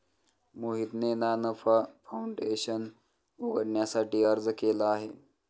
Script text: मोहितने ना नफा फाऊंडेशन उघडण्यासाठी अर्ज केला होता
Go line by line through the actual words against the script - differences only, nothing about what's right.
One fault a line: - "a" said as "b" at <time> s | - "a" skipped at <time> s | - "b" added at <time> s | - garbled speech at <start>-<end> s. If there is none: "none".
- "होता" said as "आहे" at 4.9 s